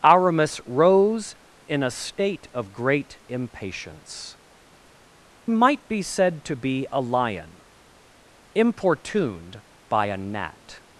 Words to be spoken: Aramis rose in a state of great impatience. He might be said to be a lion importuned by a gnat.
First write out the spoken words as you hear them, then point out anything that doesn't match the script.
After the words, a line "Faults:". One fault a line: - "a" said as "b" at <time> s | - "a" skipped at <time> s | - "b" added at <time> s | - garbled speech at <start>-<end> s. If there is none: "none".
Aramis rose in a state of great impatience. Might be said to be a lion importuned by a gnat.
Faults:
- "He" skipped at 4.4 s